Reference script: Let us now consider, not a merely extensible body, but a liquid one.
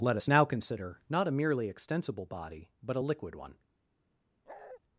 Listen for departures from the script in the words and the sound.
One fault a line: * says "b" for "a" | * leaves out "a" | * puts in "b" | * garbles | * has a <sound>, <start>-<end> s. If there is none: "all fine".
* has a bark, 4.5-4.8 s